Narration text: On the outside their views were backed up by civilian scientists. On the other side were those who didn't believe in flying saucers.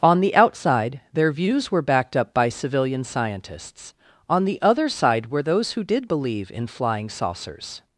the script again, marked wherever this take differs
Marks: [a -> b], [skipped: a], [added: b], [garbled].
On the outside their views were backed up by civilian scientists. On the other side were those who [didn't -> did] believe in flying saucers.